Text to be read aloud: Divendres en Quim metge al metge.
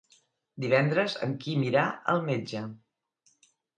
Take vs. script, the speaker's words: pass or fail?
fail